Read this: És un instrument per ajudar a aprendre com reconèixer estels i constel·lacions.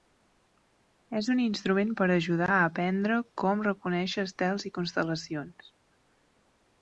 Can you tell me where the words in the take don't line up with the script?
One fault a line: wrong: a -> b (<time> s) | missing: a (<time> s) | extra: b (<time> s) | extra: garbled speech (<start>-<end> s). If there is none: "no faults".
no faults